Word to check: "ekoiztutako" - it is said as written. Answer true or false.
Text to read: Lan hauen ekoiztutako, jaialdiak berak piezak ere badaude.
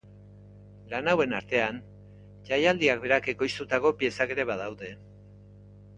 false